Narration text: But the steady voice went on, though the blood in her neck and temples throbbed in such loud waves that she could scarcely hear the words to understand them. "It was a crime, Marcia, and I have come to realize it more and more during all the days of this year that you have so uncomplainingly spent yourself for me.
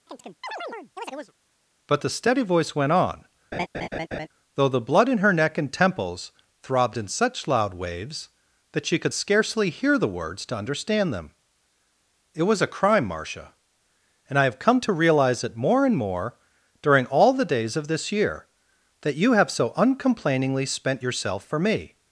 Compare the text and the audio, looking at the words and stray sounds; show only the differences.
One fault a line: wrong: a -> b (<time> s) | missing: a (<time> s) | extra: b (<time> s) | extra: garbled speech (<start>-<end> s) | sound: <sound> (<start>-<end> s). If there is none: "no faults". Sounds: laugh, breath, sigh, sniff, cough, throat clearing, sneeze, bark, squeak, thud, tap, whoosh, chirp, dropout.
sound: chirp (0.1-1.3 s)
sound: laugh (3.5-4.3 s)